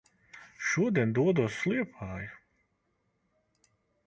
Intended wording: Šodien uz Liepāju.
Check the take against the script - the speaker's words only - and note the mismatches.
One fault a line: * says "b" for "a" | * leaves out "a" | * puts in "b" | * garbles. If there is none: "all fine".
* puts in "dodos"